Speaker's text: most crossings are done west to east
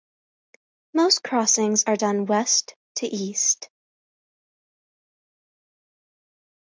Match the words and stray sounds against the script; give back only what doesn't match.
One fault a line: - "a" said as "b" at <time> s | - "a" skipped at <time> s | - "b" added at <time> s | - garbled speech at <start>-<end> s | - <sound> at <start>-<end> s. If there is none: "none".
none